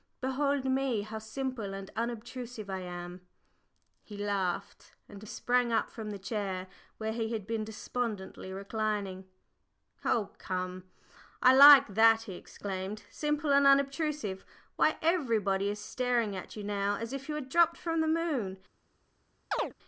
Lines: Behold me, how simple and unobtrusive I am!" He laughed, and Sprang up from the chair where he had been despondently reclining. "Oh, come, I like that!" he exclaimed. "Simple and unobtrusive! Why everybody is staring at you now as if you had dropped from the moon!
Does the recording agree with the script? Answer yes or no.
yes